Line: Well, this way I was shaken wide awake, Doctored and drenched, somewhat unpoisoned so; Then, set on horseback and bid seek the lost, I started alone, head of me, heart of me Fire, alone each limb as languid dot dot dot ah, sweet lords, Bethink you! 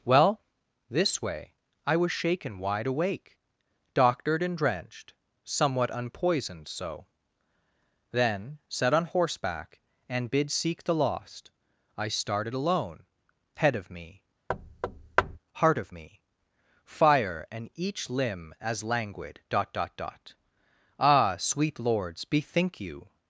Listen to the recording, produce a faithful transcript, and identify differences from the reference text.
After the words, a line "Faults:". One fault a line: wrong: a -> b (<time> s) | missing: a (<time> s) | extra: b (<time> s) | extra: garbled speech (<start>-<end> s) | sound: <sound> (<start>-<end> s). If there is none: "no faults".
Well, this way I was shaken wide awake, Doctored and drenched, somewhat unpoisoned so; Then, set on horseback and bid seek the lost, I started alone, head of me, heart of me Fire, and each limb as languid dot dot dot ah, sweet lords, Bethink you!
Faults:
sound: thud (14.5-15.4 s)
wrong: alone -> and (17.5 s)